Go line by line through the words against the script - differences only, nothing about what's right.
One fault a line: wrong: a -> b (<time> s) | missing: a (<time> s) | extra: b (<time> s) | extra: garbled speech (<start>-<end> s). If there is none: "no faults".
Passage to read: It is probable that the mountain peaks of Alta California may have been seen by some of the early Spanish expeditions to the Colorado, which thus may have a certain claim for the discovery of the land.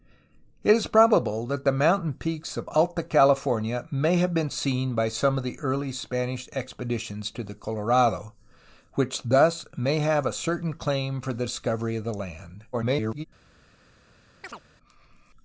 extra: garbled speech (12.7-13.2 s)